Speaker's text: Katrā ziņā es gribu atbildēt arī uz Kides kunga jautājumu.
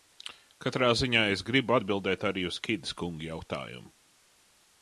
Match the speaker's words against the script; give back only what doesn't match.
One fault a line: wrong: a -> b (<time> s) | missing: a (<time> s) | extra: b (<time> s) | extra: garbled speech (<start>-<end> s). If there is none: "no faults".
no faults